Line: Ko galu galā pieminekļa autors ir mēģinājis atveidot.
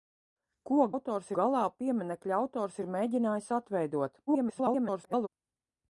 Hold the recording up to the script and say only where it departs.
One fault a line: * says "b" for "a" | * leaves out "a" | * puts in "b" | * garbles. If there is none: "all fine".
* says "autors" for "galu"
* garbles